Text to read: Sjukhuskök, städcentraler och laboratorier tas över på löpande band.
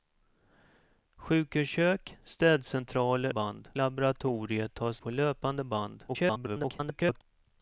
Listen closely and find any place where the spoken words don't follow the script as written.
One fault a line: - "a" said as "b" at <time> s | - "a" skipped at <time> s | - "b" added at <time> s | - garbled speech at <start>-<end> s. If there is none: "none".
- "och" said as "band" at 3.3 s
- "över" skipped at 5.0 s
- garbled speech at 6.1-7.2 s